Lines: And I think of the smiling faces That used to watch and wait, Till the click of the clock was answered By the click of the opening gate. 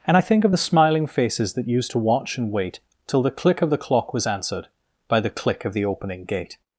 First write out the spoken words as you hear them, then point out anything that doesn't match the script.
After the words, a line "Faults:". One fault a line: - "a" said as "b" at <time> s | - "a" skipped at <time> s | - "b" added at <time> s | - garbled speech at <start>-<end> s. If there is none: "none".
And I think of the smiling faces That used to watch and wait, Till the click of the clock was answered By the click of the opening gate.
Faults:
none